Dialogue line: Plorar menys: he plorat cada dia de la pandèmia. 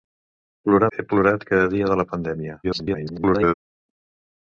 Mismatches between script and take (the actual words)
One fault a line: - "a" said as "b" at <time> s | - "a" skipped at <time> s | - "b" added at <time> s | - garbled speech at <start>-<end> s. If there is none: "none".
- "menys" skipped at 0.9 s
- garbled speech at 2.6-3.5 s